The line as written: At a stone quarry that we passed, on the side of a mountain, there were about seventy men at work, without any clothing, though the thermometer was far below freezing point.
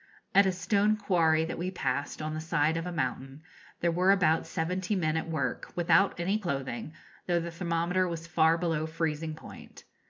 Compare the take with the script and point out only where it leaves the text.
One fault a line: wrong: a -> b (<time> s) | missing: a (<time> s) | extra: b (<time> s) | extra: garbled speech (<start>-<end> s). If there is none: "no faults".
no faults